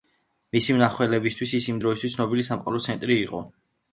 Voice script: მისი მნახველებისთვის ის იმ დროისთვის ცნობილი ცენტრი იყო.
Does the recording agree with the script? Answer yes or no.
no